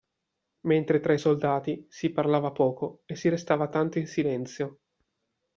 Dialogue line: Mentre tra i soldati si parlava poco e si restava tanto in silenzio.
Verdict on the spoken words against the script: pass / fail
pass